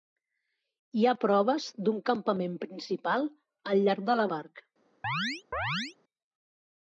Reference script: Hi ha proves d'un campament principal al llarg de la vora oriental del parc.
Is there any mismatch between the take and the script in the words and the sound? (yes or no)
yes